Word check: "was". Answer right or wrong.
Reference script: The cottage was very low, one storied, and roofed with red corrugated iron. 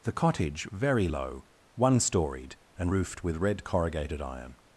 wrong